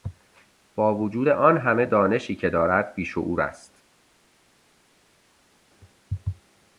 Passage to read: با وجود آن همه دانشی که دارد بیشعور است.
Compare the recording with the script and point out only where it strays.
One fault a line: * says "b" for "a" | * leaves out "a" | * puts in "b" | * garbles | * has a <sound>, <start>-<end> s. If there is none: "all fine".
all fine